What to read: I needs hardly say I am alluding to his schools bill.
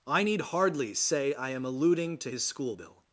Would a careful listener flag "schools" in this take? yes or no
yes